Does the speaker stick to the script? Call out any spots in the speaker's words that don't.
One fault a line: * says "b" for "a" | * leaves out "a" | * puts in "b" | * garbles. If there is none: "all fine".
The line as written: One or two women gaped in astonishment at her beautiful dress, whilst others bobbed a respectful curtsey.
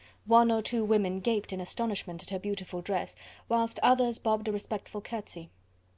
all fine